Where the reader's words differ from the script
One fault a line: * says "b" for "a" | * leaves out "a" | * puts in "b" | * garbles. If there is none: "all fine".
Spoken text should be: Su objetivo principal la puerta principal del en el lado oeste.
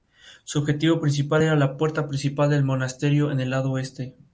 * puts in "era"
* puts in "monasterio"